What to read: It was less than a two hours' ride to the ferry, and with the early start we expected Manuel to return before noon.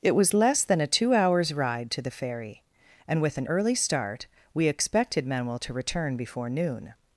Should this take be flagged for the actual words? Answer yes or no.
yes